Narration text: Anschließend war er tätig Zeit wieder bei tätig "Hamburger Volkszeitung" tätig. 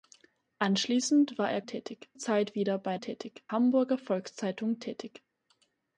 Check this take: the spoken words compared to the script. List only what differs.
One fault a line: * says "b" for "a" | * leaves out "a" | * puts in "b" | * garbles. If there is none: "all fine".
all fine